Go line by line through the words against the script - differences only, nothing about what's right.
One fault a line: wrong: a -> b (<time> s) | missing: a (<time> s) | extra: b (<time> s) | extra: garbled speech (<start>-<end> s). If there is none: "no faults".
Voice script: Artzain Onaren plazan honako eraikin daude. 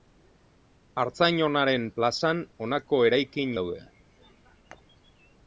no faults